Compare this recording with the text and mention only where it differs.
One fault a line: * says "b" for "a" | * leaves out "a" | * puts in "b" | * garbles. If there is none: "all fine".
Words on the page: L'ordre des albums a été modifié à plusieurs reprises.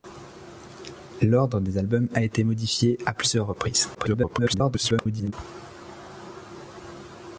* garbles